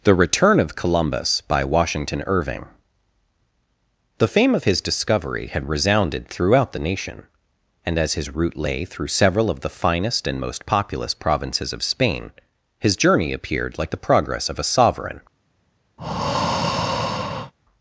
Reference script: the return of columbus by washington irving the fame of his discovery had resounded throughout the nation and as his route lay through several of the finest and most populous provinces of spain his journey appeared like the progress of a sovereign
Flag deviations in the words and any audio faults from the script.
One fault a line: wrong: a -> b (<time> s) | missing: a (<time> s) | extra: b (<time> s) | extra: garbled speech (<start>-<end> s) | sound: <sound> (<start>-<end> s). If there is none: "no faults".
sound: breath (16.0-17.5 s)